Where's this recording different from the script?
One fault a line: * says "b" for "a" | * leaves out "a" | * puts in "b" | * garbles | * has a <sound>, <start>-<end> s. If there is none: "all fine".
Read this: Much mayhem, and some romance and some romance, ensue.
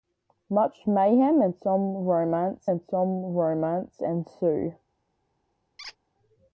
* has a squeak, 5.8-6.0 s